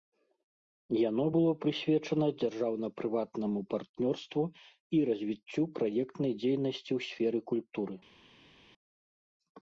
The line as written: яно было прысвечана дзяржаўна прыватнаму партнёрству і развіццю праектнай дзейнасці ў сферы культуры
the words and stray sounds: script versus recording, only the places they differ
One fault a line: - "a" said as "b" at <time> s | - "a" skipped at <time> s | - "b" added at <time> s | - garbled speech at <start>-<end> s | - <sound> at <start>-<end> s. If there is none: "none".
none